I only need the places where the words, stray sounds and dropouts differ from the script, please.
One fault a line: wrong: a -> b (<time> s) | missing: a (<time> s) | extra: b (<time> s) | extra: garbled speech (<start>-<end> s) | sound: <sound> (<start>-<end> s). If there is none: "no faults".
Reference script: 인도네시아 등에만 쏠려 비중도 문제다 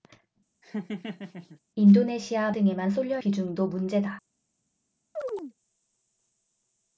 sound: laugh (0.6-1.6 s)
sound: chirp (5.2-5.5 s)